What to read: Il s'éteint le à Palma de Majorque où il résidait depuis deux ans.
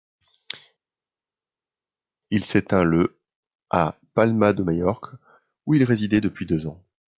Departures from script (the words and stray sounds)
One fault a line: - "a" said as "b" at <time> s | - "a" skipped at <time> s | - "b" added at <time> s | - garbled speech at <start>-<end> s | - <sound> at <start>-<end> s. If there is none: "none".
none